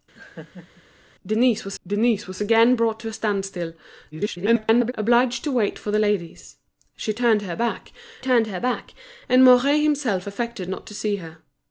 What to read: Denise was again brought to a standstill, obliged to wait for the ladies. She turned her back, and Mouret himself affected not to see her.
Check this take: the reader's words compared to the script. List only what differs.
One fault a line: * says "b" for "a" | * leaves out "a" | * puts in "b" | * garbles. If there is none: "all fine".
* puts in "denise was"
* garbles
* puts in "turned her back"